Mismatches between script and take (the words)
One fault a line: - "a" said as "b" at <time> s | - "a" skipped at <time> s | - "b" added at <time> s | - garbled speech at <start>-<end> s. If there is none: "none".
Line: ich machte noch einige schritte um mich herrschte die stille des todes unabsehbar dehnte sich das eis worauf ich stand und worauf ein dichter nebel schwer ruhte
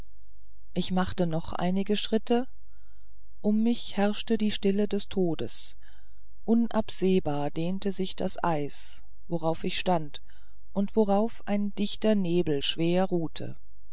none